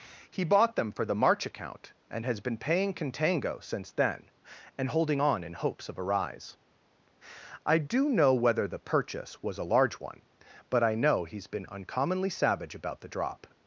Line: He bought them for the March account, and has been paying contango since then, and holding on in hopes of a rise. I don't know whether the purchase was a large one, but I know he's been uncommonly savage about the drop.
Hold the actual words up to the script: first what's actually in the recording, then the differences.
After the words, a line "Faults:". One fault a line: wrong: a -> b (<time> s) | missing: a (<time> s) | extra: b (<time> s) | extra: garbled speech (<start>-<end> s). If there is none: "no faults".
He bought them for the March account, and has been paying contango since then, and holding on in hopes of a rise. I do know whether the purchase was a large one, but I know he's been uncommonly savage about the drop.
Faults:
wrong: don't -> do (7.8 s)